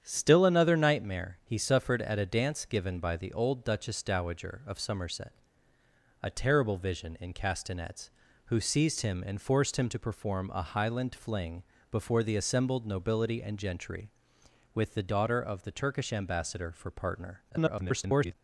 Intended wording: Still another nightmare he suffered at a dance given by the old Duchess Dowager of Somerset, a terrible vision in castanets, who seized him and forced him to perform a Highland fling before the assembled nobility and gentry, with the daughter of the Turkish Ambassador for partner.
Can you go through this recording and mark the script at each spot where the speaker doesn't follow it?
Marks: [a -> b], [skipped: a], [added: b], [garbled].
Still another nightmare he suffered at a dance given by the old Duchess Dowager of Somerset, a terrible vision in castanets, who seized him and forced him to perform a Highland fling before the assembled nobility and gentry, with the daughter of the Turkish Ambassador for partner. [garbled]